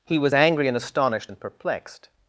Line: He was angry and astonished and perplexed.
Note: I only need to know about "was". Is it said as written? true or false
true